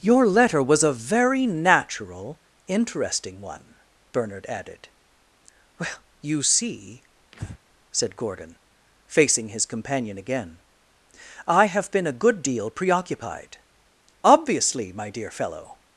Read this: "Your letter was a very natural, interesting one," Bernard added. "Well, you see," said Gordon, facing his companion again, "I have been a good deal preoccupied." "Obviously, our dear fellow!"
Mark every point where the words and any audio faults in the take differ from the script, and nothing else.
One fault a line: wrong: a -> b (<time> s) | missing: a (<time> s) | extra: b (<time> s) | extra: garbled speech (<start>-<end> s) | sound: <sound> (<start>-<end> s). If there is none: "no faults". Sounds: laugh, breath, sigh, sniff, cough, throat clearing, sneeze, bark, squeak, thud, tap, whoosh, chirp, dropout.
sound: breath (7.3-7.6 s)
wrong: our -> my (14.9 s)